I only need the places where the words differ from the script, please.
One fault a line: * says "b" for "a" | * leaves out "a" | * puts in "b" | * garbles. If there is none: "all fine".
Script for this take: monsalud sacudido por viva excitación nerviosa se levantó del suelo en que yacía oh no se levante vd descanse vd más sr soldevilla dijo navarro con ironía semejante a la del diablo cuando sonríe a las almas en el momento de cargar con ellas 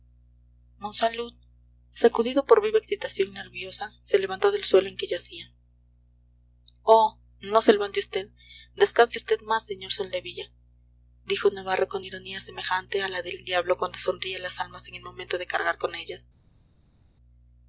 all fine